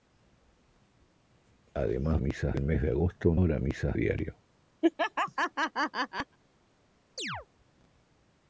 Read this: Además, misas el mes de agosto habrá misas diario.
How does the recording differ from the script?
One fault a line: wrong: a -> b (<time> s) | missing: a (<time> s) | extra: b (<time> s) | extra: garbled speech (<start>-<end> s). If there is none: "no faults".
no faults